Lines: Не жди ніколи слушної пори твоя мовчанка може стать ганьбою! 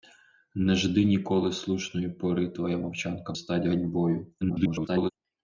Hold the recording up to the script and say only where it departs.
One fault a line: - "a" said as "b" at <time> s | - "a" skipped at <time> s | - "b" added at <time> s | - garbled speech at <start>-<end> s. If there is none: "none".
- "може" skipped at 3.3 s
- garbled speech at 4.4-5.1 s